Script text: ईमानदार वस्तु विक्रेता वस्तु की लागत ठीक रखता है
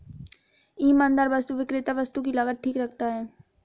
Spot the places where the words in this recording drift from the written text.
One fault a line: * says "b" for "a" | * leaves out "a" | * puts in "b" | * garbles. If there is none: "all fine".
all fine